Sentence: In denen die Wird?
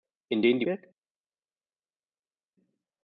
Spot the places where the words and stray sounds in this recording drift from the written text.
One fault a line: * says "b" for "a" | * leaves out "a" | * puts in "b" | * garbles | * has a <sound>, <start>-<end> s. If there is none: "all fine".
all fine